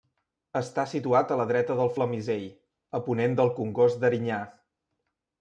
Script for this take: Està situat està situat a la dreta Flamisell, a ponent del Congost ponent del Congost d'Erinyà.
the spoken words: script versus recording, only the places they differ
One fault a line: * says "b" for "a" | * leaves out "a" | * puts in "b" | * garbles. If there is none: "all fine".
* leaves out "està situat"
* puts in "del"
* leaves out "ponent del Congost"